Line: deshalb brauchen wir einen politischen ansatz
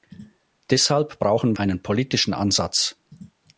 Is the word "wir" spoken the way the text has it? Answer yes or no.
no